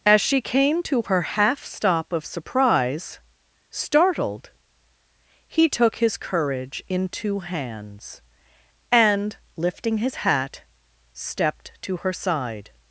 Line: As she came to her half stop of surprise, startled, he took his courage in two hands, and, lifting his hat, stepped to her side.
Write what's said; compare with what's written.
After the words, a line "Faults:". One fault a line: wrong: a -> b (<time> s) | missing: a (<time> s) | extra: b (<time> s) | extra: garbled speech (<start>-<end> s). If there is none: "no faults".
As she came to her half stop of surprise, startled, he took his courage in two hands, and, lifting his hat, stepped to her side.
Faults:
no faults